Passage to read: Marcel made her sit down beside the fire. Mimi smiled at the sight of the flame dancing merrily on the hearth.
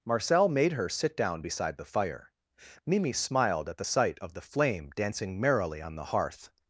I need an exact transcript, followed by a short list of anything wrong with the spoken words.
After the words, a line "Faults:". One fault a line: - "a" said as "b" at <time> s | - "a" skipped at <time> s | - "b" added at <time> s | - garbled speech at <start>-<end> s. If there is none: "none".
Marcel made her sit down beside the fire. Mimi smiled at the sight of the flame dancing merrily on the hearth.
Faults:
none